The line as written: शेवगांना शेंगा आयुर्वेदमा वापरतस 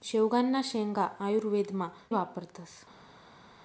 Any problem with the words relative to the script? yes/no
no